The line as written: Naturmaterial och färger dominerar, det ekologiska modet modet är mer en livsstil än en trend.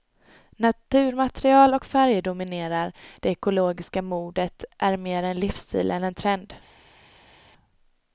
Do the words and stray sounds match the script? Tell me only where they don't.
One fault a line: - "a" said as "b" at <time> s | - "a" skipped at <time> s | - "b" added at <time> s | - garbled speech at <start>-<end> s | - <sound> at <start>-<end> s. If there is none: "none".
- "modet" skipped at 4.6 s